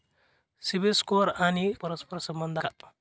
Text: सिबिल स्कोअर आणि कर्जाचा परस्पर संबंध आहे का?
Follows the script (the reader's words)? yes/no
no